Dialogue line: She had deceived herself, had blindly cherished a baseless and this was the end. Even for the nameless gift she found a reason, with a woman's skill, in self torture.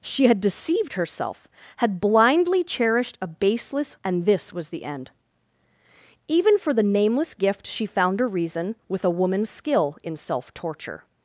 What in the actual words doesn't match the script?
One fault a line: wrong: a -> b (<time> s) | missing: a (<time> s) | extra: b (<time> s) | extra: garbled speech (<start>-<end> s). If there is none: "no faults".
no faults